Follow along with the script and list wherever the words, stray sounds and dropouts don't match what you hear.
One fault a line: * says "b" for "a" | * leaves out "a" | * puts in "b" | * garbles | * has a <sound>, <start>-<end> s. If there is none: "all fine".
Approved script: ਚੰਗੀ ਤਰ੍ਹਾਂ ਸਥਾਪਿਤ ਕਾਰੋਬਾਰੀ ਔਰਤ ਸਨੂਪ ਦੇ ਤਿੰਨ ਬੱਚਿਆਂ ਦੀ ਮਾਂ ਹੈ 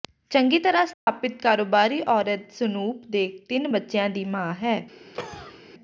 * has a dropout, 0.9-1.1 s
* has a cough, 5.1-5.6 s